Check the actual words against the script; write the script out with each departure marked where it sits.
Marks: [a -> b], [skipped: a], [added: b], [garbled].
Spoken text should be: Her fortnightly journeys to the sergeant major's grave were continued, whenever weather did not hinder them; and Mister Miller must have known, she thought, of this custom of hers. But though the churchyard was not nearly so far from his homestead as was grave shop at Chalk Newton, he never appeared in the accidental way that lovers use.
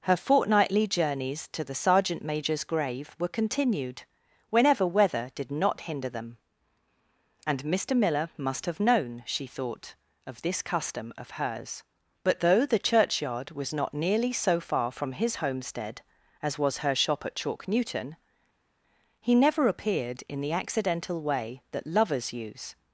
Her fortnightly journeys to the sergeant major's grave were continued, whenever weather did not hinder them; and Mister Miller must have known, she thought, of this custom of hers. But though the churchyard was not nearly so far from his homestead as was [grave -> her] shop at Chalk Newton, he never appeared in the accidental way that lovers use.